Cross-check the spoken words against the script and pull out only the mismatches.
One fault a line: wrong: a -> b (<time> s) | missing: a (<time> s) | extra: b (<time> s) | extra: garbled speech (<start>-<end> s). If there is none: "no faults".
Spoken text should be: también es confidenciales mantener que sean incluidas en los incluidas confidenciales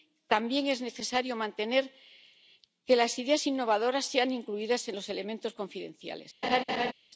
wrong: confidenciales -> necesario (0.8 s)
extra: las ideas innovadoras (3.0 s)
wrong: incluidas -> elementos (5.1 s)